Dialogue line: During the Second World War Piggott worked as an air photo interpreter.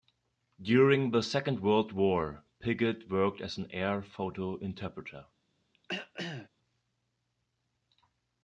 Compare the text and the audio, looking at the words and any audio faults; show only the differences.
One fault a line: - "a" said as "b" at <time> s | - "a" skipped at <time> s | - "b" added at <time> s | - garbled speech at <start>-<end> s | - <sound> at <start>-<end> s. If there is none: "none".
- throat clearing at 5.7-6.5 s